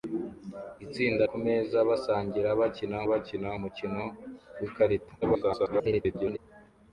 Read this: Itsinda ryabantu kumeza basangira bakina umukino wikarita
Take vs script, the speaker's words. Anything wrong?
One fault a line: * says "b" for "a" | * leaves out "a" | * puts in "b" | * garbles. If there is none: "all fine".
* leaves out "ryabantu"
* puts in "bakina"
* garbles